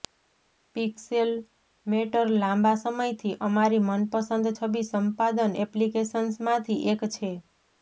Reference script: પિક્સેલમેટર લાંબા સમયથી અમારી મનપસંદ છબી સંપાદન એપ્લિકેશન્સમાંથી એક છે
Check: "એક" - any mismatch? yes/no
no